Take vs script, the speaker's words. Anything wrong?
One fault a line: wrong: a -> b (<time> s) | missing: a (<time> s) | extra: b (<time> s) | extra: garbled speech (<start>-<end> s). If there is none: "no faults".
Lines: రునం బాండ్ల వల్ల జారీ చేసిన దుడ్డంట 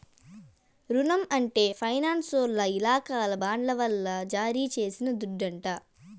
extra: అంటే ఫైనాన్సోల్ల ఇలాకాల (1.3 s)